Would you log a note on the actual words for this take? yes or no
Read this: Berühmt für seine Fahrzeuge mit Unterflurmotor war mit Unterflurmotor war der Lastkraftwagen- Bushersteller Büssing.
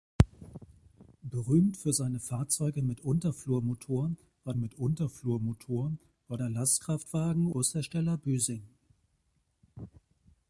no